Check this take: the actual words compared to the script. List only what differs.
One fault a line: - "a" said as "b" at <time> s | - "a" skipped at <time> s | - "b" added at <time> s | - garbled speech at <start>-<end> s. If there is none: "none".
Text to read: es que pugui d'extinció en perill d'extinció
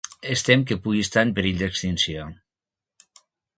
- "tem" added at 0.5 s
- "d'extinció" said as "estar" at 1.1 s